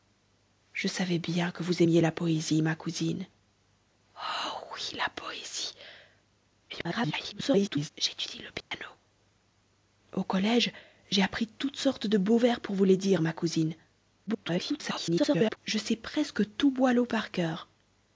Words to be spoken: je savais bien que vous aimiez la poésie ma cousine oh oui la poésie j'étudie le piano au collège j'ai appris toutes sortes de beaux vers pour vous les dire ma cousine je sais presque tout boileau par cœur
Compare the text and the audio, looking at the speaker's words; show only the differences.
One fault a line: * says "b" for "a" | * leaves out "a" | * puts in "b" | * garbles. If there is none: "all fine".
* garbles
* garbles